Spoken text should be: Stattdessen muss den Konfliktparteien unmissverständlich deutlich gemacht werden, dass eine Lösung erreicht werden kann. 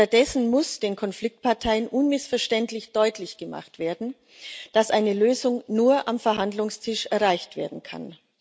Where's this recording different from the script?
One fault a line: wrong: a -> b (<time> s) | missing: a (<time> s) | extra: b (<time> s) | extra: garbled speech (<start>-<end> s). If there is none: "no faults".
extra: nur am Verhandlungstisch (5.7 s)